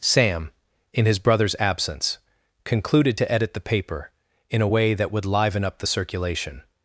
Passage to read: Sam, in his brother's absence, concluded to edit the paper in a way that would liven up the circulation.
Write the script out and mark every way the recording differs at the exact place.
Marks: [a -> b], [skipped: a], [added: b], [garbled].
Sam, in his brother's absence, concluded to edit the paper in a way that would liven up the circulation.